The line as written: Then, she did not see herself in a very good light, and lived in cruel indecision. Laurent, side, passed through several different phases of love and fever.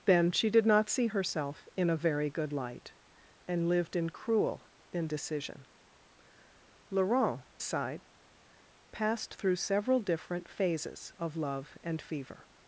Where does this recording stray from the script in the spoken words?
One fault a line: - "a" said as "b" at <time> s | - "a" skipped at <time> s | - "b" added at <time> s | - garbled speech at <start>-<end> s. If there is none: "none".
none